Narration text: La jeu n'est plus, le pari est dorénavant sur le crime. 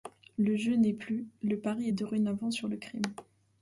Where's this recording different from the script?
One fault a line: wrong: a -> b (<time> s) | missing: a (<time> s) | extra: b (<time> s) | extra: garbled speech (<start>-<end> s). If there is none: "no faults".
wrong: La -> Le (0.4 s)